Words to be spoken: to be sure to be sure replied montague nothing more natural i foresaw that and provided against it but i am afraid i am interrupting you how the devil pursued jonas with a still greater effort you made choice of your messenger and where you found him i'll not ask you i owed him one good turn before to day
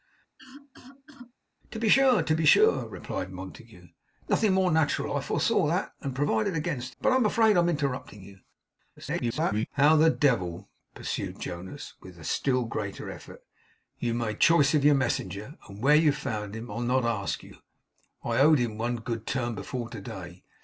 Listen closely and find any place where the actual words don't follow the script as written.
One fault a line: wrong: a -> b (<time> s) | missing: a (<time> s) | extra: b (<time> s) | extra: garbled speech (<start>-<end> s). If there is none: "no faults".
missing: it (6.9 s)
extra: garbled speech (9.0-9.7 s)